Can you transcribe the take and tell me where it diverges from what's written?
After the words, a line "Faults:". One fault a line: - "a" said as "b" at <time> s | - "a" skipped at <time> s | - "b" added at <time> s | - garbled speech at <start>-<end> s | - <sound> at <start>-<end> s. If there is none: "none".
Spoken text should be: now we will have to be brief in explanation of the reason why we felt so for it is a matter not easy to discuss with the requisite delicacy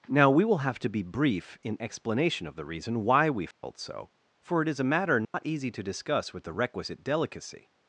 now we will have to be brief in explanation of the reason why we felt so for it is a matter not easy to discuss with the requisite delicacy
Faults:
- dropout at 3.5-3.6 s
- dropout at 5.2-5.3 s